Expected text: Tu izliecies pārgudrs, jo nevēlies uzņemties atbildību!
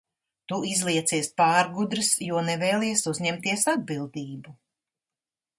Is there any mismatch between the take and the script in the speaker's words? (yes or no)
no